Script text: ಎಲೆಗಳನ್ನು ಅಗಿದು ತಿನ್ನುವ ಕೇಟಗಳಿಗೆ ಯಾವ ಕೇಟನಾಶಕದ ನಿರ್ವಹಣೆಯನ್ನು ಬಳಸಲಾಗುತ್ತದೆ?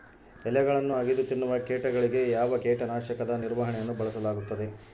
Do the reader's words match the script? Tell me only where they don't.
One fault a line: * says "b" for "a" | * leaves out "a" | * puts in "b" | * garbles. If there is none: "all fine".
all fine